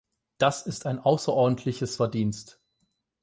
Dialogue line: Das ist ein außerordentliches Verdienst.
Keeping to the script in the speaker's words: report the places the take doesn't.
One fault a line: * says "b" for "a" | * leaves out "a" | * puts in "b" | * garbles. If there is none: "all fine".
all fine